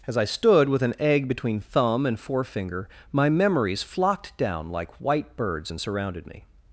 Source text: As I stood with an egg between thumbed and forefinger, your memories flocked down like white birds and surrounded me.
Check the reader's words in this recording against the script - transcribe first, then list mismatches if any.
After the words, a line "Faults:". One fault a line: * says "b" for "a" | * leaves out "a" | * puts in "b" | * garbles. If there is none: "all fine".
As I stood with an egg between thumb and forefinger, my memories flocked down like white birds and surrounded me.
Faults:
* says "thumb" for "thumbed"
* says "my" for "your"